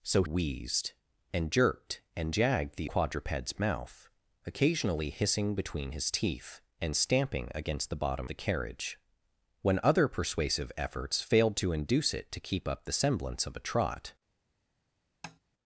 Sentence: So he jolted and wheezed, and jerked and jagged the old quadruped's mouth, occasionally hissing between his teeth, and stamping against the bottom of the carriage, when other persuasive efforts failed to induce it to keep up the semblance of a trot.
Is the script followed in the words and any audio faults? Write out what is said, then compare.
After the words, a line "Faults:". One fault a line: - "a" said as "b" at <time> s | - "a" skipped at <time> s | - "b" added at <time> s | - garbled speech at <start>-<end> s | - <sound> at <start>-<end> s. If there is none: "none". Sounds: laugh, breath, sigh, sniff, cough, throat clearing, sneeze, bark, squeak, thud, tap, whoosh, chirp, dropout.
So wheezed, and jerked and jagged the quadruped's mouth, occasionally hissing between his teeth, and stamping against the bottom the carriage, when other persuasive efforts failed to induce it to keep up the semblance of a trot.
Faults:
- "he jolted and" skipped at 0.2 s
- "old" skipped at 2.9 s
- "of" skipped at 8.3 s
- tap at 15.2-15.4 s